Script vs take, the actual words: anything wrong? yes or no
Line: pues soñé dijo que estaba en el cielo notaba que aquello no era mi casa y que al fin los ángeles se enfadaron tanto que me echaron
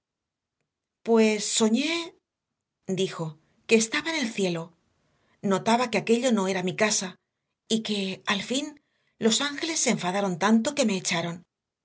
no